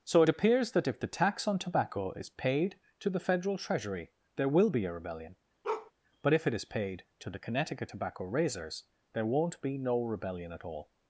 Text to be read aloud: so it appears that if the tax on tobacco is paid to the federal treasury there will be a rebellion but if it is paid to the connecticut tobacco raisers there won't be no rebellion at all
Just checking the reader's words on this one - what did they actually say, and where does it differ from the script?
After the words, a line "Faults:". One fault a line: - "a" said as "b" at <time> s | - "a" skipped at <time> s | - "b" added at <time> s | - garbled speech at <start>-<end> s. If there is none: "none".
so it appears that if the tax on tobacco is paid to the federal treasury there will be a rebellion but if it is paid to the connecticut tobacco raisers there won't be no rebellion at all
Faults:
none